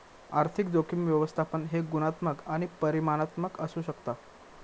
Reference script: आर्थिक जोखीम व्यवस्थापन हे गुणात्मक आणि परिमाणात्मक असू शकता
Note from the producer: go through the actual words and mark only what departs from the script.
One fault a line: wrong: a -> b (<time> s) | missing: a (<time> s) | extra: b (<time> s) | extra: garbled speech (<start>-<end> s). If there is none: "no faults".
no faults